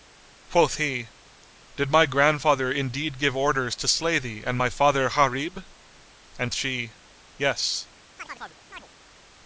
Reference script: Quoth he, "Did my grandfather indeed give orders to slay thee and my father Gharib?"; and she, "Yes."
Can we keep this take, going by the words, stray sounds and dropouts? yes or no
no